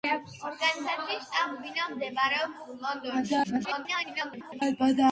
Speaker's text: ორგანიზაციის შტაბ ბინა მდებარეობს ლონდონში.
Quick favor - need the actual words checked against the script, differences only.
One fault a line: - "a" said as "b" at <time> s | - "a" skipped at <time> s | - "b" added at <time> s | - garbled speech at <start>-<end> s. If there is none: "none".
- garbled speech at 3.4-4.6 s